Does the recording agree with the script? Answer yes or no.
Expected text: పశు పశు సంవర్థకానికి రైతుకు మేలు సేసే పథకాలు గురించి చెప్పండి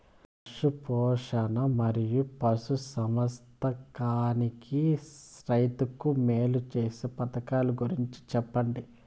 no